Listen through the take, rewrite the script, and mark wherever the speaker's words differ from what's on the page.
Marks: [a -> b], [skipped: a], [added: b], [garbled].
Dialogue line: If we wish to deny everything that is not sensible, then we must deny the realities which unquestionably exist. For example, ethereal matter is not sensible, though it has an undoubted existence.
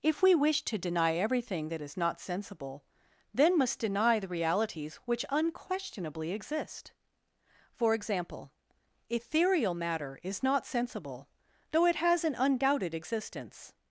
If we wish to deny everything that is not sensible, then [skipped: we] must deny the realities which unquestionably exist. For example, ethereal matter is not sensible, though it has an undoubted existence.